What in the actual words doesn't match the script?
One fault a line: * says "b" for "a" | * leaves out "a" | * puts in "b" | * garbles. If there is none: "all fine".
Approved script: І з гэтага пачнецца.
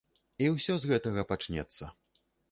* puts in "ўсё"